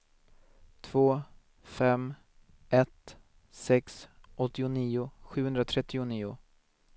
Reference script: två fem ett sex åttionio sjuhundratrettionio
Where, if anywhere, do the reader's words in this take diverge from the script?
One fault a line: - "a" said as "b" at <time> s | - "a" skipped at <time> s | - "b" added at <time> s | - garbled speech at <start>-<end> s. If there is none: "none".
none